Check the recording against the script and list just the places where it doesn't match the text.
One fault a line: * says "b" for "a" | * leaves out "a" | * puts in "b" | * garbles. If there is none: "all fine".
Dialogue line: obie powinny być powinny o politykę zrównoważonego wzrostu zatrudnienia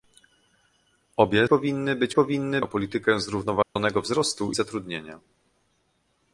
all fine